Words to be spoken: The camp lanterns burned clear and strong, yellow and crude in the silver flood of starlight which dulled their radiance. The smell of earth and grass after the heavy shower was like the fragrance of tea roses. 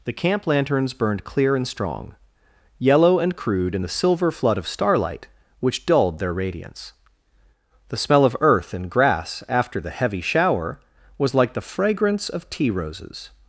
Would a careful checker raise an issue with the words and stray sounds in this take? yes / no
no